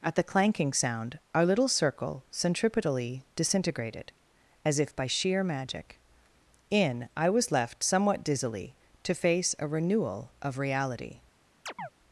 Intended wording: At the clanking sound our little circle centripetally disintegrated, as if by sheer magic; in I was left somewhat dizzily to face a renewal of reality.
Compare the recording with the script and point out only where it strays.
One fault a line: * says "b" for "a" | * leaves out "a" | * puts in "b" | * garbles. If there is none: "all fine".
all fine